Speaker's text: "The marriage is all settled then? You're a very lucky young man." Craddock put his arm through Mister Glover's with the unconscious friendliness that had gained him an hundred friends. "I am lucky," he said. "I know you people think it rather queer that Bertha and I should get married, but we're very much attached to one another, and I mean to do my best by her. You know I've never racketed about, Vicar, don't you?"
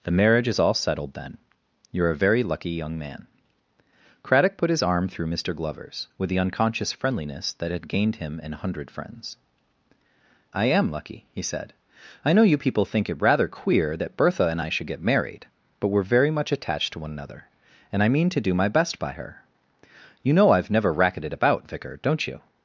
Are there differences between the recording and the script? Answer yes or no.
no